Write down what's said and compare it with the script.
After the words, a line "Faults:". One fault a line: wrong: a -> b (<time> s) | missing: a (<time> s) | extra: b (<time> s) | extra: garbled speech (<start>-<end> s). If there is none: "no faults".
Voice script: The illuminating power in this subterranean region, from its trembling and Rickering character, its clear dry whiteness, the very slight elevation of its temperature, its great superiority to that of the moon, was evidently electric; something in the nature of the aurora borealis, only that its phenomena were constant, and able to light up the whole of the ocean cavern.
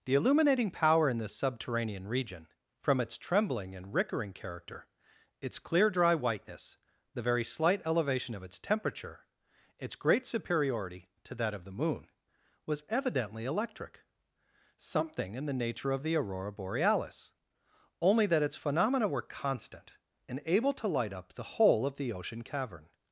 The illuminating power in this subterranean region, from its trembling and Rickering character, its clear dry whiteness, the very slight elevation of its temperature, its great superiority to that of the moon, was evidently electric; something in the nature of the aurora borealis, only that its phenomena were constant, and able to light up the whole of the ocean cavern.
Faults:
no faults